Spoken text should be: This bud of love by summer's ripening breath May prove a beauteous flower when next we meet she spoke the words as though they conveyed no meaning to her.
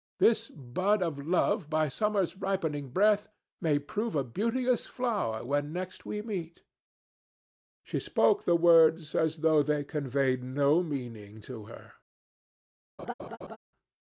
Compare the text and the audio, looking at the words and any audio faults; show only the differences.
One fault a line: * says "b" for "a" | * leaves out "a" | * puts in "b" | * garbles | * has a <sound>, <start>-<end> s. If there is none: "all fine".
* has a laugh, 13.0-13.6 s